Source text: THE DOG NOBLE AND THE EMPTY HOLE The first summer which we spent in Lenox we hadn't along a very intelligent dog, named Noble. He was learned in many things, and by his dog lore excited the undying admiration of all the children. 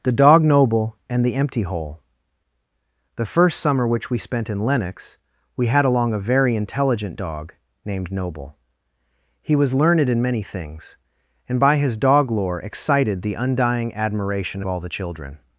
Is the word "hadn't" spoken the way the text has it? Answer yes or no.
no